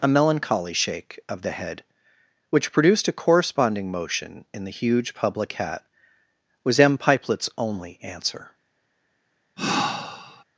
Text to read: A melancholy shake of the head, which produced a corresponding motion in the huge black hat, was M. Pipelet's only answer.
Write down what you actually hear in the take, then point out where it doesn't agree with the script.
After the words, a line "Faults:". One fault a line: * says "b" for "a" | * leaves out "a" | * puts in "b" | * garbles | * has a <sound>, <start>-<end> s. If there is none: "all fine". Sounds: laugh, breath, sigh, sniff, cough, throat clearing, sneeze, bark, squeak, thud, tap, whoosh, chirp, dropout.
A melancholy shake of the head, which produced a corresponding motion in the huge public hat, was M. Pipelet's only answer.
Faults:
* says "public" for "black"
* has a sigh, 9.6-10.4 s